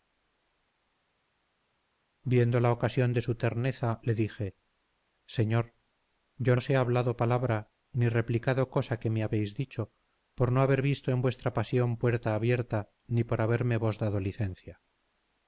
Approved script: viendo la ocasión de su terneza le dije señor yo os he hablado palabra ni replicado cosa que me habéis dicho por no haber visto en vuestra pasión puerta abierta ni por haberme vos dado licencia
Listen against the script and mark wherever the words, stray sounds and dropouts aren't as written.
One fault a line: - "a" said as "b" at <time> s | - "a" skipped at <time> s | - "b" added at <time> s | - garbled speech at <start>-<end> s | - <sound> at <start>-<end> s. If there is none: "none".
none